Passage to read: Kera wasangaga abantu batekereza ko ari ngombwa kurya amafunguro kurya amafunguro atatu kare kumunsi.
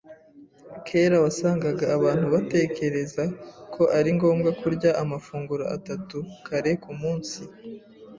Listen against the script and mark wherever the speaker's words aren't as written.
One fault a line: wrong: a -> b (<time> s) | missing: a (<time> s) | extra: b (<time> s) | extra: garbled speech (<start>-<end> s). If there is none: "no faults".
missing: kurya amafunguro (5.6 s)